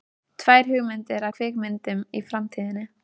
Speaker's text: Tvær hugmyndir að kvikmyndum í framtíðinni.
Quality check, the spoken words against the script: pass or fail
pass